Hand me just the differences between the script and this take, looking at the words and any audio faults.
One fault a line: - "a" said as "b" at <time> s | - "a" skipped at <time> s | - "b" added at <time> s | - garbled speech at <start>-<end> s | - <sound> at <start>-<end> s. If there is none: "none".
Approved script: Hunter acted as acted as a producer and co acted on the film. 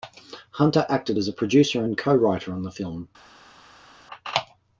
- "acted as" skipped at 1.3 s
- "acted" said as "writer" at 2.1 s